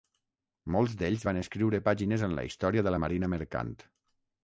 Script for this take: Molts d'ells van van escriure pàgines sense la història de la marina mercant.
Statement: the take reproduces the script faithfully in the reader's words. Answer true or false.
false